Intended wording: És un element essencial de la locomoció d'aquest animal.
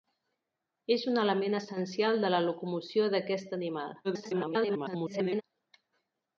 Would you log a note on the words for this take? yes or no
yes